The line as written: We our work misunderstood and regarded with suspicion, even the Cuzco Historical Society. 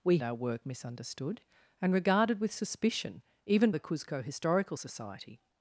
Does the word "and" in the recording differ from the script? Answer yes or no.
no